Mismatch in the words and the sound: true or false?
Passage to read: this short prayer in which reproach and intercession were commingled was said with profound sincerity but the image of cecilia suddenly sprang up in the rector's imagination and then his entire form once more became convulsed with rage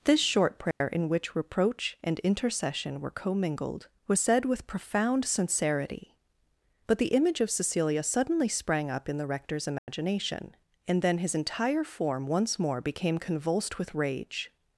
true